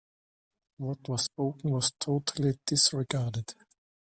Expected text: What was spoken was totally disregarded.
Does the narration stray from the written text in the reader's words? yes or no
no